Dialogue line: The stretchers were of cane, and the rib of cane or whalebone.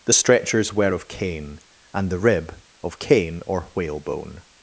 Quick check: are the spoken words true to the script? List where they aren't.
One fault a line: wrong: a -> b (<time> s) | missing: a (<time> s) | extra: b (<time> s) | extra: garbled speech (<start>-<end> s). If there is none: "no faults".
no faults